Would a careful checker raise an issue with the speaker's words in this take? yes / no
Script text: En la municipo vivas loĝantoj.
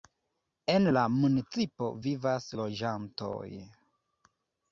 no